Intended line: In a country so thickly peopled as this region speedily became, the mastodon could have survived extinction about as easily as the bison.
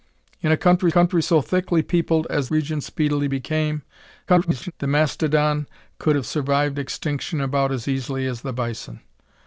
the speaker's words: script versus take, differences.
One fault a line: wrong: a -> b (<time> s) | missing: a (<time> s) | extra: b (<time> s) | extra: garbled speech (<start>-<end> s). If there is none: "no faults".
extra: country (0.9 s)
missing: this (2.5 s)
extra: garbled speech (4.3-4.7 s)